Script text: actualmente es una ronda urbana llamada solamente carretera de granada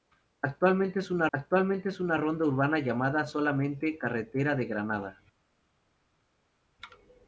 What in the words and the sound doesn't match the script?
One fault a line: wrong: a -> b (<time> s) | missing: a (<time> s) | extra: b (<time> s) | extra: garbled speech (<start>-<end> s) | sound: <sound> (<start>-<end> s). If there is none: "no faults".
extra: actualmente es una (1.3 s)